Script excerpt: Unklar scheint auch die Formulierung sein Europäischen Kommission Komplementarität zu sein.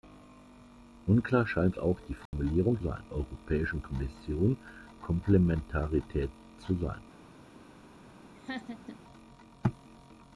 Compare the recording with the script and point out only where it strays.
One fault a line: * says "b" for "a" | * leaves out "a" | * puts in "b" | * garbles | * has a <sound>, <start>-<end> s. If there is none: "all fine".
* has a dropout, 2.3-2.3 s
* has a laugh, 8.3-9.0 s